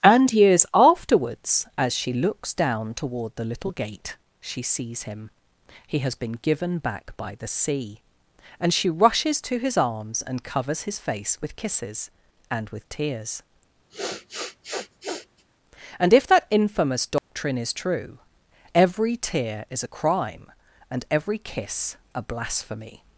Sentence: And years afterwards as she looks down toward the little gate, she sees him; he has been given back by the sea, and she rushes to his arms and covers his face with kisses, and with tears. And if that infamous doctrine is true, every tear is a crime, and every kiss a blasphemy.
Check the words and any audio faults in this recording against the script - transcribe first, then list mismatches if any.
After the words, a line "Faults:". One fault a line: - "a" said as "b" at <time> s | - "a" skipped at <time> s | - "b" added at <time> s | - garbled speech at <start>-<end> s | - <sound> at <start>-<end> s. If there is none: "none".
And years afterwards as she looks down toward the little gate, she sees him; he has been given back by the sea, and she rushes to his arms and covers his face with kisses, and with tears. And if that infamous doctrine is true, every tear is a crime, and every kiss a blasphemy.
Faults:
- sniff at 13.9-15.4 s
- dropout at 17.2-17.3 s